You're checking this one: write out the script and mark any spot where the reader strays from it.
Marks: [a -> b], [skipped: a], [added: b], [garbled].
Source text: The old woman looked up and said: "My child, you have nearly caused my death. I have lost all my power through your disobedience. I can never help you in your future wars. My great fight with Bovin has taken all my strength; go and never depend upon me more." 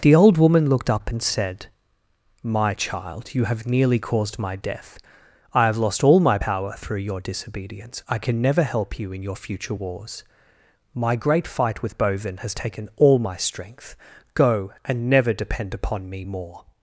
The old woman looked up and said: "My child, you have nearly caused my death. I have lost all my power through your disobedience. I can never help you in your future wars. My great fight with Bovin has taken all my strength; go and never depend upon me more."